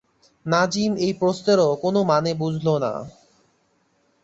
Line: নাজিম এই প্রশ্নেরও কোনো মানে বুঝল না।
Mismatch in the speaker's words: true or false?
false